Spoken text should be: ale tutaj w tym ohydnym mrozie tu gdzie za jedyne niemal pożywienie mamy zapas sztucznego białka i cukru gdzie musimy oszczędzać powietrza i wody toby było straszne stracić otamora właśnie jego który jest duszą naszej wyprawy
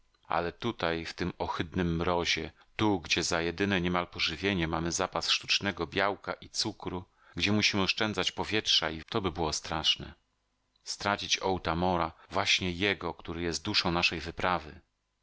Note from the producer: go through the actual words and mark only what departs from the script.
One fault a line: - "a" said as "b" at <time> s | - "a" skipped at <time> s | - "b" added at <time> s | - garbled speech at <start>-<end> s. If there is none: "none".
- "wody" skipped at 9.0 s